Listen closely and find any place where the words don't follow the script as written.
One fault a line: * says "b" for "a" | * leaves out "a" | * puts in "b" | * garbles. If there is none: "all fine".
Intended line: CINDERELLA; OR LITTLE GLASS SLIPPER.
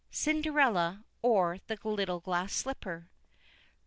* puts in "THE"